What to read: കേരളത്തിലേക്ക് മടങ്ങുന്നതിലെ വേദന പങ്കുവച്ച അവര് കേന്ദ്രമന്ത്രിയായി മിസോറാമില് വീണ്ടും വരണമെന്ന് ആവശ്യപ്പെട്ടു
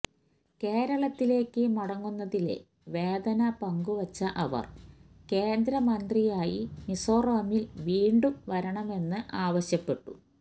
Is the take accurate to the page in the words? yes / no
yes